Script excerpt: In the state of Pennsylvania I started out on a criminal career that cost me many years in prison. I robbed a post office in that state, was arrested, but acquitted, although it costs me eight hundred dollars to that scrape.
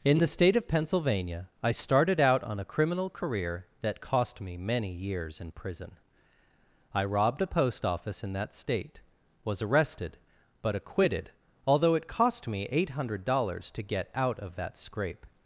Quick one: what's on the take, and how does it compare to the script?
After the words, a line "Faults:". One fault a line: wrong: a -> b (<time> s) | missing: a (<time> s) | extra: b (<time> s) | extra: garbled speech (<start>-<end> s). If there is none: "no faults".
In the state of Pennsylvania I started out on a criminal career that cost me many years in prison. I robbed a post office in that state, was arrested, but acquitted, although it cost me eight hundred dollars to get out of that scrape.
Faults:
wrong: costs -> cost (12.1 s)
extra: get out of (13.8 s)